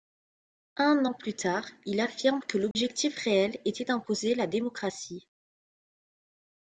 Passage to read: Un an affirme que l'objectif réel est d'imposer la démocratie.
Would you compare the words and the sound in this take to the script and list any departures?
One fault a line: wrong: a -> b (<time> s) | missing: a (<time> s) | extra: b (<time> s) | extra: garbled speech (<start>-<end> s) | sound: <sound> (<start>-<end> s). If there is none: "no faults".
extra: plus tard il (1.1 s)
sound: dropout (2.7-2.8 s)
wrong: est -> était (3.6 s)